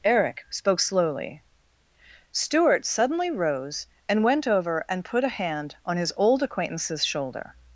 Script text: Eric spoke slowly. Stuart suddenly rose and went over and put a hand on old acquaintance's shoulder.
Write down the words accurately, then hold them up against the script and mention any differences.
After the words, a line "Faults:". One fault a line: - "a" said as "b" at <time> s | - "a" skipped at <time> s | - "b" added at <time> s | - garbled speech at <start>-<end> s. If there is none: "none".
Eric spoke slowly. Stuart suddenly rose and went over and put a hand on his old acquaintance's shoulder.
Faults:
- "his" added at 6.0 s